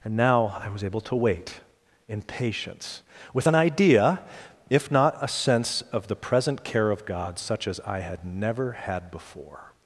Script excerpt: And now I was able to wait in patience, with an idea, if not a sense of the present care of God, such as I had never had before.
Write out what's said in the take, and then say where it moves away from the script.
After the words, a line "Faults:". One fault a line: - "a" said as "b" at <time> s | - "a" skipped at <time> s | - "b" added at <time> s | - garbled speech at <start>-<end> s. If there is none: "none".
And now I was able to wait in patience, with an idea, if not a sense of the present care of God, such as I had never had before.
Faults:
none